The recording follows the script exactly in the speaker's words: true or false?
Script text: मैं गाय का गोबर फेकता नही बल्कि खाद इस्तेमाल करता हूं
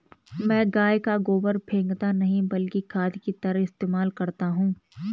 false